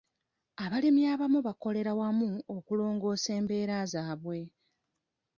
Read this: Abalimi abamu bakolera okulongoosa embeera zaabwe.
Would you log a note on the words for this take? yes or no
yes